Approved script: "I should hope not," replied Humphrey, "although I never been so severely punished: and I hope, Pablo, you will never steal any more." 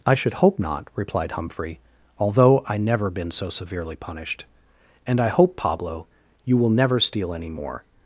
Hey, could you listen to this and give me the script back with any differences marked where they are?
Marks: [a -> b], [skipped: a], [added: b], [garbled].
"I should hope not," replied Humphrey, "although I never been so severely punished: and I hope, Pablo, you will never steal any more."